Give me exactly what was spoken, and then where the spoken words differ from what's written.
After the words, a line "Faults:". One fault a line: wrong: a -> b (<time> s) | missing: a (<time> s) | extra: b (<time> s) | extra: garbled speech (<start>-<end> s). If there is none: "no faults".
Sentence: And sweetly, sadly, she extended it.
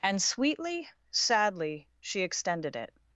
And sweetly, sadly, she extended it.
Faults:
no faults